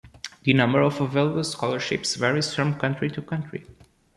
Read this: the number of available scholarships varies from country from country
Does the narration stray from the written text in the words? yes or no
yes